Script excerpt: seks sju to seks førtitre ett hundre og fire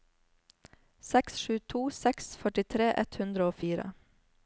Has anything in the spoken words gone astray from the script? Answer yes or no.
no